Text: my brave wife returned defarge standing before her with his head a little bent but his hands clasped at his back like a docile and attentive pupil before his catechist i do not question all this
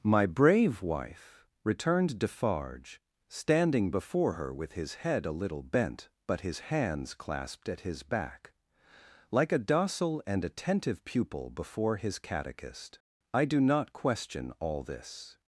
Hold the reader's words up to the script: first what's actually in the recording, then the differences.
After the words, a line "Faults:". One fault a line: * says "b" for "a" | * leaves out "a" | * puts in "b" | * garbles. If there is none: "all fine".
my brave wife returned defarge standing before her with his head a little bent but his hands clasped at his back like a docile and attentive pupil before his catechist i do not question all this
Faults:
all fine